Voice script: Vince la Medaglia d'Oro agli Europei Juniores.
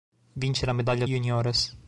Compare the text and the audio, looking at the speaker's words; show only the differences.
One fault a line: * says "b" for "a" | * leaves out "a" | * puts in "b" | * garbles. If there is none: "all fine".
* leaves out "d'Oro agli Europei"